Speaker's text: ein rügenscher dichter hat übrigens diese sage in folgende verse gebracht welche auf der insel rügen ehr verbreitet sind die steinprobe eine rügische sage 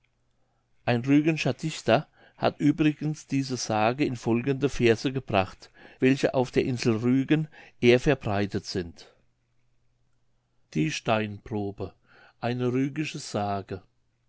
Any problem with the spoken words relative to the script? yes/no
no